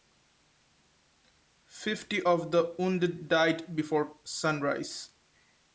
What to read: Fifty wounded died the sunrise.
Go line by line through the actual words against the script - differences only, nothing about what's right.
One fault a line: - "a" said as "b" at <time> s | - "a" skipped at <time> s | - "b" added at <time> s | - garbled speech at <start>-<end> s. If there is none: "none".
- "of the" added at 2.2 s
- "the" said as "before" at 3.8 s